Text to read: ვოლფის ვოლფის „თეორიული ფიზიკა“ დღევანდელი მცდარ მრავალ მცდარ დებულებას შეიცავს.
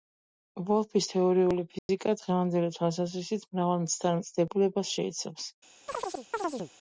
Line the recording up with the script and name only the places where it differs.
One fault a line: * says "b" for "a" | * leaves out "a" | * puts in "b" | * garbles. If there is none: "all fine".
* leaves out "ვოლფის"
* says "თვალსაზრისით" for "მცდარ"